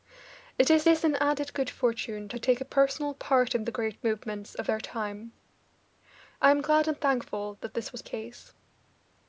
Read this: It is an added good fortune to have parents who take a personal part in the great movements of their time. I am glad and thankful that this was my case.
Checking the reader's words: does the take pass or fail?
fail